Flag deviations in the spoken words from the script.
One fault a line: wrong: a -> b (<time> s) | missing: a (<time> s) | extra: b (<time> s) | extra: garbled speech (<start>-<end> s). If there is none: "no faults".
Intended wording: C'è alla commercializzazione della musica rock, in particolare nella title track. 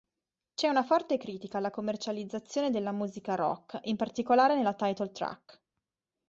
extra: una forte critica (0.7 s)